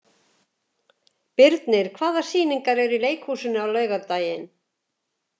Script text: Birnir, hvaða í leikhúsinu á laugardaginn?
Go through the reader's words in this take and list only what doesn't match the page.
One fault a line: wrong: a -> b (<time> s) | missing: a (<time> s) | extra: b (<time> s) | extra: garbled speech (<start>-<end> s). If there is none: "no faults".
extra: sýningar eru (2.3 s)